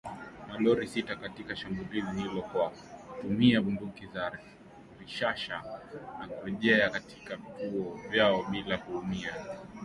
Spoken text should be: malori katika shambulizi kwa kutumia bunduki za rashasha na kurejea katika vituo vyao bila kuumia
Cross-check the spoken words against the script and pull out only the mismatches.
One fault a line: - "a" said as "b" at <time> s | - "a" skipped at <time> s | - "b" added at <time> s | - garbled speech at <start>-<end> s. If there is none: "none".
- "sita" added at 0.9 s
- "hilo" added at 2.2 s